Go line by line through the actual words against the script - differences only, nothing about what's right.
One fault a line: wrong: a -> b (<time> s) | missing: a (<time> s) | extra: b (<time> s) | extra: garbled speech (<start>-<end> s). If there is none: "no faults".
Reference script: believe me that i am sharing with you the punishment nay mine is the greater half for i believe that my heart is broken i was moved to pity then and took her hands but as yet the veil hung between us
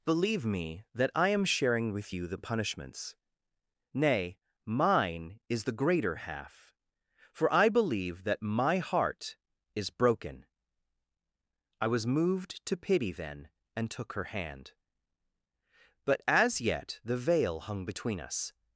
wrong: punishment -> punishments (2.4 s)
wrong: hands -> hand (14.2 s)